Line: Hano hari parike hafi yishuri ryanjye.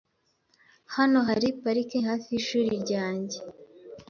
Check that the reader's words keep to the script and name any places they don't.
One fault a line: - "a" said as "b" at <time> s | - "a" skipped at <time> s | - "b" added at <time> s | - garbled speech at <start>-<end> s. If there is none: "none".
none